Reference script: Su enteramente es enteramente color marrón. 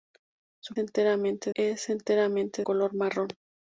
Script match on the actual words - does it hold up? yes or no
yes